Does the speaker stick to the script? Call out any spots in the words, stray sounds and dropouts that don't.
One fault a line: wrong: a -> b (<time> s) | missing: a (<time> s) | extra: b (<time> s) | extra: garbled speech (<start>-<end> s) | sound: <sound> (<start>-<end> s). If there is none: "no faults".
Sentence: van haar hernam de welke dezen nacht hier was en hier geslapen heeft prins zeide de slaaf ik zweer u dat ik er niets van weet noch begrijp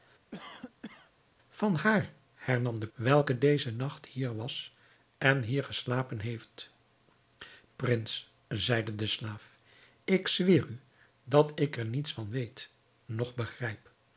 sound: cough (0.3-1.1 s)